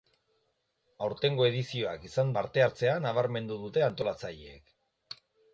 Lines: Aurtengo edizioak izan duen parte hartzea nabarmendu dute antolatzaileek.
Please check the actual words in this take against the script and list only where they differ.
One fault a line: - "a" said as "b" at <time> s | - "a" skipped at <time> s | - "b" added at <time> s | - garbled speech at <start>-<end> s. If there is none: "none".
- "duen" skipped at 2.3 s